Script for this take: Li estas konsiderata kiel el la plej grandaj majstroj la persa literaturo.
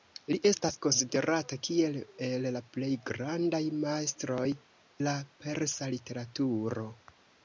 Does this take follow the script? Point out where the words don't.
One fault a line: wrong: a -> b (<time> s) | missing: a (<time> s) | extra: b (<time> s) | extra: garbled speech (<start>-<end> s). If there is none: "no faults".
no faults